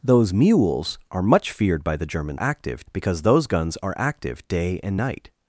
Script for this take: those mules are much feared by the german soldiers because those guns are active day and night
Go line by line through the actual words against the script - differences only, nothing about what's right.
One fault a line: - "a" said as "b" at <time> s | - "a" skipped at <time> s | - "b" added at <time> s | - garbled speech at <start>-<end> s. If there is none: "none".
- "soldiers" said as "active" at 2.4 s